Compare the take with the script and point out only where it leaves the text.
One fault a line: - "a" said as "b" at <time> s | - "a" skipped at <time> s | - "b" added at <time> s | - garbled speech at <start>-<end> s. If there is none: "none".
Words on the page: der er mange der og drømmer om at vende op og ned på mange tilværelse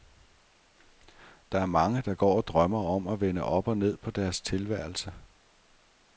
- "går" added at 2.1 s
- "mange" said as "deres" at 4.1 s